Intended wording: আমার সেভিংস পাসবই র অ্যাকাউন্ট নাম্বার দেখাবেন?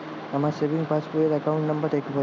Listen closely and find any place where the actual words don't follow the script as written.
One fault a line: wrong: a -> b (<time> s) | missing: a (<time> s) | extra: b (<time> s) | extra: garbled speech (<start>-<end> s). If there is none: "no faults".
no faults